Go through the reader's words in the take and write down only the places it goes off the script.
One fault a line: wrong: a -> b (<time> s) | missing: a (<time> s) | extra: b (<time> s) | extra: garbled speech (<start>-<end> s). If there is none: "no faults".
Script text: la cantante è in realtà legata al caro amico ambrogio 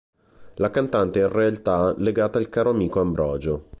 no faults